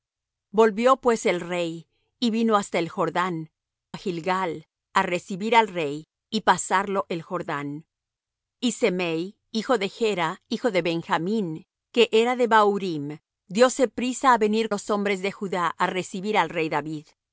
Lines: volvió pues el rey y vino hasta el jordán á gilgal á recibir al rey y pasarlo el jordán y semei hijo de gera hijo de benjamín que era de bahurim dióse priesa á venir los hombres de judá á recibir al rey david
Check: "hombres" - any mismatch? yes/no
no